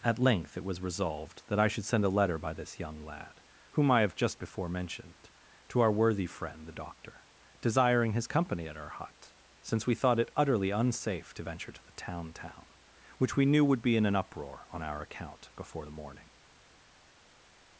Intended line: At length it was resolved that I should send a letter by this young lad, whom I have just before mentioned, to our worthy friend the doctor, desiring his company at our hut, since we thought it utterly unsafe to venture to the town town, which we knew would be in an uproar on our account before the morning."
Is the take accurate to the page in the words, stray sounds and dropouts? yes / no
yes